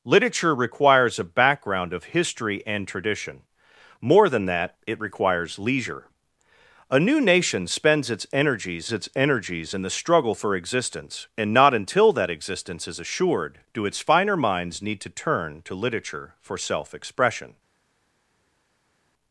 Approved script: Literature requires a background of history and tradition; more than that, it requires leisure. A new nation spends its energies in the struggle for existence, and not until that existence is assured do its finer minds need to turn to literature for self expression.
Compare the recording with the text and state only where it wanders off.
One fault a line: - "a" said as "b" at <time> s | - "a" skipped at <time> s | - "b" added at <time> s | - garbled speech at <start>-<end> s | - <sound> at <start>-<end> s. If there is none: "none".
- "its energies" added at 8.9 s